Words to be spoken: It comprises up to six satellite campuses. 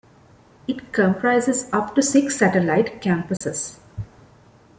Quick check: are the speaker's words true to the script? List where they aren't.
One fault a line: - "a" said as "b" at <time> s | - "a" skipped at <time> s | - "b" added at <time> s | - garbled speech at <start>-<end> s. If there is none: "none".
none